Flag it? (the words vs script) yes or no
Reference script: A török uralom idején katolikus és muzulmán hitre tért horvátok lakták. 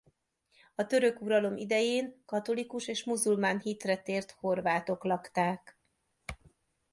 no